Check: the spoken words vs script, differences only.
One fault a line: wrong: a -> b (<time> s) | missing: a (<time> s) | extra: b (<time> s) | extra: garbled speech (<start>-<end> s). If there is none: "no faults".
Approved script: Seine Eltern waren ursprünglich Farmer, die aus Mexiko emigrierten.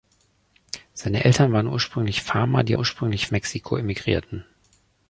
wrong: aus -> ursprünglich (2.7 s)